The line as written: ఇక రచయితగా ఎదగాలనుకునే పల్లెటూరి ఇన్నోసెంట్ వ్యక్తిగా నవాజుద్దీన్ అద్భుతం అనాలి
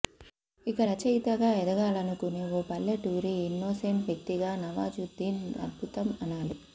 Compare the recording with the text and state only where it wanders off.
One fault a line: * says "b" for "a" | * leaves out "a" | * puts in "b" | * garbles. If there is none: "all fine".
* puts in "ఓ"